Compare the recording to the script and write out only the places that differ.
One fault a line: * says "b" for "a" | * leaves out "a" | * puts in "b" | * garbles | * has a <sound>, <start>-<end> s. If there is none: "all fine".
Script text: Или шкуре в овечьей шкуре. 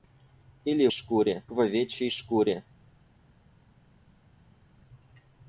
all fine